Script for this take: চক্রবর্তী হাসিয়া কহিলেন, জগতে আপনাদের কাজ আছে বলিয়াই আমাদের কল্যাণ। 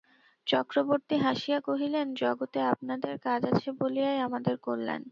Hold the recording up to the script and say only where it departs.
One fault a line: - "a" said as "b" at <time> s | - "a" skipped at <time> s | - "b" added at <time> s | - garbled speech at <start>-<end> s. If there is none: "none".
none